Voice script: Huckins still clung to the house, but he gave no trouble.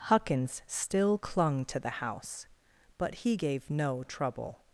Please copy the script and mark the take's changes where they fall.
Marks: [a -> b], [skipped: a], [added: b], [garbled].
Huckins still clung to the house, but he gave no trouble.